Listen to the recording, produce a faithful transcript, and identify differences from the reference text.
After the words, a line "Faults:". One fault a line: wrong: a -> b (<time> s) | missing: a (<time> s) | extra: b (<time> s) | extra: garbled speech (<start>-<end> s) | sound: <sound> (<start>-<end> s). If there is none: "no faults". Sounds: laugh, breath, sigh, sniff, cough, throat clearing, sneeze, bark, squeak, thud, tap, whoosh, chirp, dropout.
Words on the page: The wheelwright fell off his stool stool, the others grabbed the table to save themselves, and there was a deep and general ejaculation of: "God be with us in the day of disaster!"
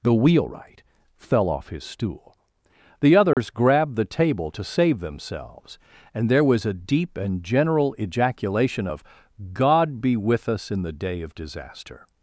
The wheelwright fell off his stool, the others grabbed the table to save themselves, and there was a deep and general ejaculation of: "God be with us in the day of disaster!"
Faults:
missing: stool (2.4 s)
sound: dropout (3.3-3.4 s)